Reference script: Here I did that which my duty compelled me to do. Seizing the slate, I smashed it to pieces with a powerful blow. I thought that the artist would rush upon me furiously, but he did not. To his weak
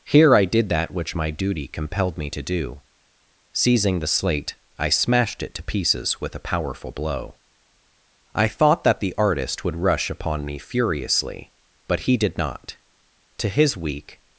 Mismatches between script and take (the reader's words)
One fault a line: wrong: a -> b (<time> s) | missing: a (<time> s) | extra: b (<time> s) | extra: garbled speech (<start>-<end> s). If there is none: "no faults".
no faults